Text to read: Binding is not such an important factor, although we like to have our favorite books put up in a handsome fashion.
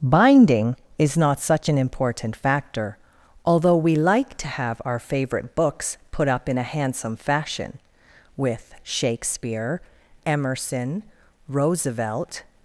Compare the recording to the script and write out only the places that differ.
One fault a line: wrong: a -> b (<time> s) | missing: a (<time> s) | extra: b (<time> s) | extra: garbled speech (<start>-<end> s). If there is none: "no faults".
extra: With Shakespeare Emerson Roosevelt (8.4 s)